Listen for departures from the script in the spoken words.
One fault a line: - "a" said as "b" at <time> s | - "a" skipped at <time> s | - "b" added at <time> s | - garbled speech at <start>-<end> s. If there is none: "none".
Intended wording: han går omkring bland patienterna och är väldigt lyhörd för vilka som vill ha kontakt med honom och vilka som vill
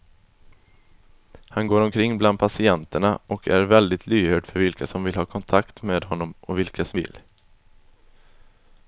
none